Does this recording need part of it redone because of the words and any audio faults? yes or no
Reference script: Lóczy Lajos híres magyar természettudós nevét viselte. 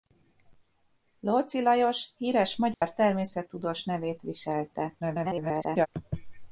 yes